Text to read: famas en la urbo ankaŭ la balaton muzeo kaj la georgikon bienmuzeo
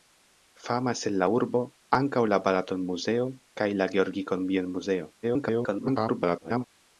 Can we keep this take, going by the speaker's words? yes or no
no